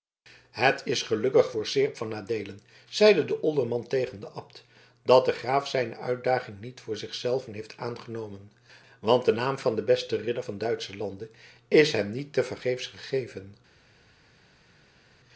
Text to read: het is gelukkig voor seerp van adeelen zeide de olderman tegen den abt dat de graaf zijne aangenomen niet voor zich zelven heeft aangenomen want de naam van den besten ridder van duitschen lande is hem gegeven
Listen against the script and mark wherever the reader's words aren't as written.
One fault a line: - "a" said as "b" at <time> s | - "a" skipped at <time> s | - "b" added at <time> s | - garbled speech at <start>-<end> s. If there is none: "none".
- "aangenomen" said as "uitdaging" at 6.0 s
- "niet tevergeefs" added at 12.1 s